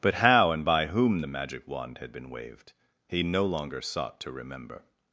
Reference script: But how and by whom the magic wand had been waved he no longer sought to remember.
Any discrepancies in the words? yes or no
no